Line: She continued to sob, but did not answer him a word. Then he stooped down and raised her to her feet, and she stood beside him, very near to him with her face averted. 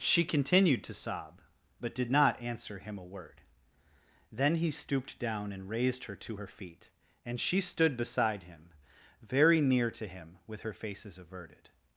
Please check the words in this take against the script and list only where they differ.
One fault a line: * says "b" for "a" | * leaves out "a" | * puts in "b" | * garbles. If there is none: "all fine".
* says "faces" for "face"